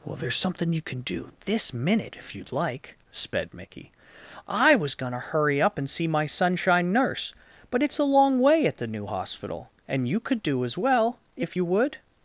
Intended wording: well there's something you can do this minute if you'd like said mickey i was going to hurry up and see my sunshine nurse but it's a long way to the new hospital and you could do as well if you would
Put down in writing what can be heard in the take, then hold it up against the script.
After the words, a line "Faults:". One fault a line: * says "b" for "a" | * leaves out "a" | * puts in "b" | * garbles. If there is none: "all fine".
well there's something you can do this minute if you'd like sped mickey i was going to hurry up and see my sunshine nurse but it's a long way at the new hospital and you could do as well if you would
Faults:
* says "sped" for "said"
* says "at" for "to"